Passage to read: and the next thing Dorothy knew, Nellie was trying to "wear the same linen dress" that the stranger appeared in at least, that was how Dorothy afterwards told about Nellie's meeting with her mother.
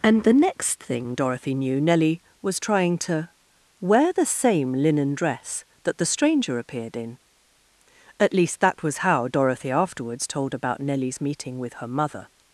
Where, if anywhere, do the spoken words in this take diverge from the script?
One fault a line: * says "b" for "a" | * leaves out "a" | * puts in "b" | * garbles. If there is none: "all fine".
all fine